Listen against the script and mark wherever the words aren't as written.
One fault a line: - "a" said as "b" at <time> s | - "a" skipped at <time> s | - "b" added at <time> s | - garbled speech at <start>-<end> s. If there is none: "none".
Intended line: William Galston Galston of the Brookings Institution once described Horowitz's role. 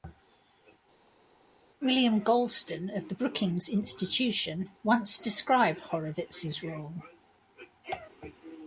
- "Galston" skipped at 2.9 s